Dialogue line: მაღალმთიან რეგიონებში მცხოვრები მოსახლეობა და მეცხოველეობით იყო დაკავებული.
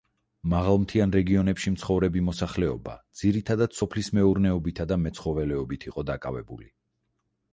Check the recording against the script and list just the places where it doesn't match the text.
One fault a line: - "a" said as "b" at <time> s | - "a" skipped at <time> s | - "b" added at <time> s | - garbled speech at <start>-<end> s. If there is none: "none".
- "ძირითადად სოფლის მეურნეობითა" added at 3.2 s